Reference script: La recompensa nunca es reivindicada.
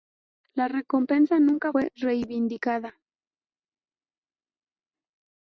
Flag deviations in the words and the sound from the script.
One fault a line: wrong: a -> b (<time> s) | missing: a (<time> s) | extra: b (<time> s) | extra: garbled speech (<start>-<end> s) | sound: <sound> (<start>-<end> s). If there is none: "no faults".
wrong: es -> fue (1.7 s)